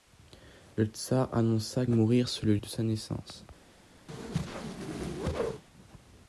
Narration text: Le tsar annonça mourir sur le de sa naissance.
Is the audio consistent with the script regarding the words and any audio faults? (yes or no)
no